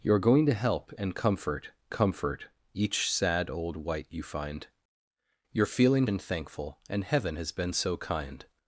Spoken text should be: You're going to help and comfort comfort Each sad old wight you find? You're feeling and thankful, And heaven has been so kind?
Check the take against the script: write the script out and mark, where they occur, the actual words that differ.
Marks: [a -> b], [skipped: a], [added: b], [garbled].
You're going to help and comfort comfort Each sad old wight you find? You're feeling and thankful, And heaven has been so kind?